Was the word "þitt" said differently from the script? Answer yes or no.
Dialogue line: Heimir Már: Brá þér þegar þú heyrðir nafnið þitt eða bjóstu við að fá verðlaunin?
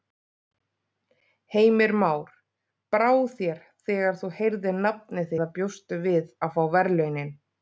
yes